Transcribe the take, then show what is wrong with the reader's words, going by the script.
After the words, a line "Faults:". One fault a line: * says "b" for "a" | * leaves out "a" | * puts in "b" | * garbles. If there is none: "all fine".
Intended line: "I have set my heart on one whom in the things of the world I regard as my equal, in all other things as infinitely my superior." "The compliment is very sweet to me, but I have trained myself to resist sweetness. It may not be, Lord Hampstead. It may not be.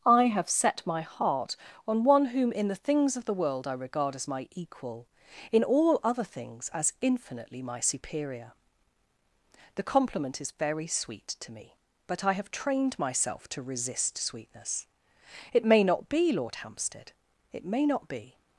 "I have set my heart on one whom in the things of the world I regard as my equal, in all other things as infinitely my superior." "The compliment is very sweet to me, but I have trained myself to resist sweetness. It may not be, Lord Hampstead. It may not be.
Faults:
all fine